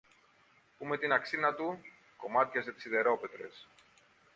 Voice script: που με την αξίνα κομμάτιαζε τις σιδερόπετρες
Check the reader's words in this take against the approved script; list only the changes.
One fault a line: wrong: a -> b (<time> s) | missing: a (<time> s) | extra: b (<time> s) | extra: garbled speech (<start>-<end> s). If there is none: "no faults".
extra: του (1.5 s)